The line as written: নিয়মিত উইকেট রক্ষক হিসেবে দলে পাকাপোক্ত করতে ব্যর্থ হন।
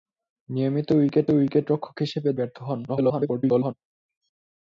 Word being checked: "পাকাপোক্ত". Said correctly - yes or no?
no